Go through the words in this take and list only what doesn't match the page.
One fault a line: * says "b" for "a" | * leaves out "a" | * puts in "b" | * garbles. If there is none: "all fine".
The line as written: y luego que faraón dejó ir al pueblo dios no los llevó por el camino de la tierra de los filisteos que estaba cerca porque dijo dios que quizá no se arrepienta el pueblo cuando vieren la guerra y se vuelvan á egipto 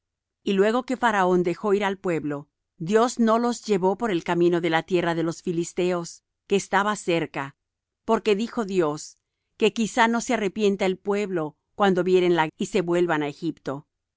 * leaves out "guerra"